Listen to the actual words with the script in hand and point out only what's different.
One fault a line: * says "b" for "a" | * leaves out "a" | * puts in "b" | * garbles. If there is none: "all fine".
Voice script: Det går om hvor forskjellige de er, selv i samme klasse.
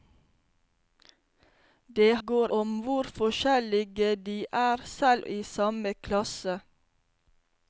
all fine